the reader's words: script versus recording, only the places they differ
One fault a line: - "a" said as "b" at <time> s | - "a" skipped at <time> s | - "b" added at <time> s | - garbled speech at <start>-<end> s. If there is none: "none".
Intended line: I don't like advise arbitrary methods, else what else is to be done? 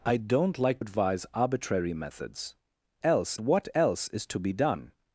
none